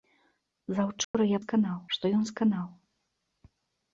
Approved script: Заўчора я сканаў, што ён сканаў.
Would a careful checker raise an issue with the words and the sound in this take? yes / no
yes